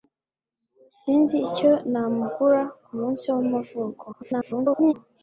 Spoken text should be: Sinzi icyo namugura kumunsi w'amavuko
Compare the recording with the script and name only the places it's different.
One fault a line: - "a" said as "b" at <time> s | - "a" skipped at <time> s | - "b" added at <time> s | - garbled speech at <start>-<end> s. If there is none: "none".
- garbled speech at 4.1-4.9 s